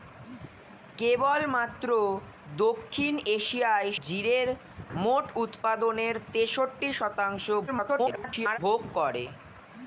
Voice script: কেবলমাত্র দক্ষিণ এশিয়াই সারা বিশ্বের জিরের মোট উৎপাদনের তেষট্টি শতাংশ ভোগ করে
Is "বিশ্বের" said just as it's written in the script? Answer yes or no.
no